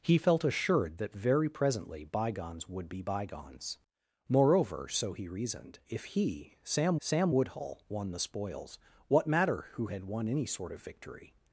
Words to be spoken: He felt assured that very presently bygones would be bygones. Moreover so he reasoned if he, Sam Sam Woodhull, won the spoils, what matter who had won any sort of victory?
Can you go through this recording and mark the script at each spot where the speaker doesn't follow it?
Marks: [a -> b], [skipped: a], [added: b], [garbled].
He felt assured that very presently bygones would be bygones. Moreover so he reasoned if he, Sam Sam Woodhull, won the spoils, what matter who had won any sort of victory?